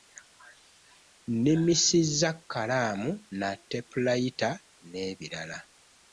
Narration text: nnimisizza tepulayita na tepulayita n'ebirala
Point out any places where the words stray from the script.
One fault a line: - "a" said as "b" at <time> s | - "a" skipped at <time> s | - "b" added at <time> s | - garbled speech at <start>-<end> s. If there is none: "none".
- "tepulayita" said as "kkalaamu" at 2.4 s